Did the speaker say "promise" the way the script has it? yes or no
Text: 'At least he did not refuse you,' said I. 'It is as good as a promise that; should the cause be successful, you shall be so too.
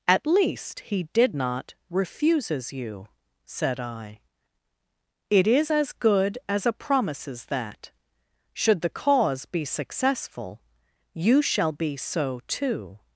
no